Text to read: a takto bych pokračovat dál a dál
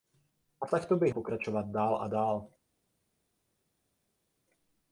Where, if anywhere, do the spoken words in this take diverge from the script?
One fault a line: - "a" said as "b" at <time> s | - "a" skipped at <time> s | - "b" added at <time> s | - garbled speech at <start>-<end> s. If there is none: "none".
none